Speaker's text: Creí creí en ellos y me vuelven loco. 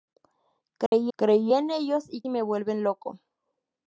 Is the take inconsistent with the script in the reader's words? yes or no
no